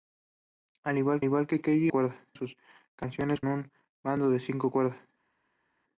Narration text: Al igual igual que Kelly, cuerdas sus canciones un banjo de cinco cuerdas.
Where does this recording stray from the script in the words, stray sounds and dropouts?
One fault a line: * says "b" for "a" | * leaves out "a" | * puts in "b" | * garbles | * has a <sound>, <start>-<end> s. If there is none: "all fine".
all fine